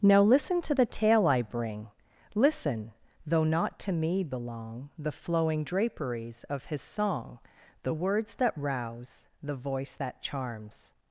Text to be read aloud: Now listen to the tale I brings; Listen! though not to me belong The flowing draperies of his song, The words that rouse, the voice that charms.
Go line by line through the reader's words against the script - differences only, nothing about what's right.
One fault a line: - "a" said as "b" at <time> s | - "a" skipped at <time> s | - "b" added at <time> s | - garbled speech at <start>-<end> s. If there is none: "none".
- "brings" said as "bring" at 1.4 s